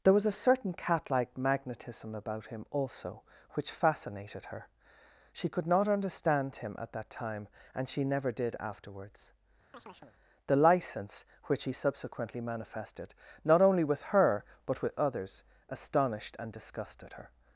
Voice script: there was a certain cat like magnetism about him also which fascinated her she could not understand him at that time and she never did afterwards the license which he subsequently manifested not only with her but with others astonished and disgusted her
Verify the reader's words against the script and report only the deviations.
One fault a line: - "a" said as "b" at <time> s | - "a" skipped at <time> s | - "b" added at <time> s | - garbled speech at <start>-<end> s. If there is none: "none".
none